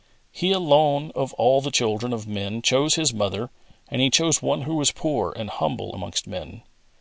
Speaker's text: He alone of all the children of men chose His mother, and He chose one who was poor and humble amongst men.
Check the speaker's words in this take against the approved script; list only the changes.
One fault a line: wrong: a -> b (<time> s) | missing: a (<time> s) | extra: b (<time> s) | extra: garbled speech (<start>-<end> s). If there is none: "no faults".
no faults